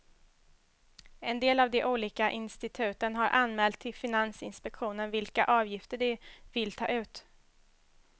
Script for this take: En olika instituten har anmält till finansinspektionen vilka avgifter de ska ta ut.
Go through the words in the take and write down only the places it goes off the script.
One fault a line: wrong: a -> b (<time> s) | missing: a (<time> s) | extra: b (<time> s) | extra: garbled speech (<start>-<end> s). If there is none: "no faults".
extra: del av de (1.4 s)
wrong: ska -> vill (6.5 s)